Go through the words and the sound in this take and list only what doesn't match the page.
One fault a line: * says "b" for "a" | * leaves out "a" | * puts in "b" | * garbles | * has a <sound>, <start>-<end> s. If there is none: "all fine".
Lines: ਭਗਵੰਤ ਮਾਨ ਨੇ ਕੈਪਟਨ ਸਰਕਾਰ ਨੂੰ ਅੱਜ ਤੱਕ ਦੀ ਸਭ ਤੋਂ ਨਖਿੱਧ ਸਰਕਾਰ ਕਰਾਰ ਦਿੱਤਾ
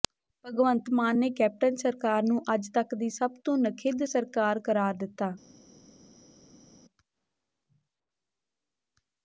all fine